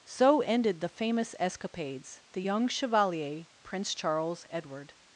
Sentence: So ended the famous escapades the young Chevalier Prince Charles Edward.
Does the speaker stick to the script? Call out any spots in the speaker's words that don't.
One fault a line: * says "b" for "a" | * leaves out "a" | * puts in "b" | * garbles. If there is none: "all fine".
all fine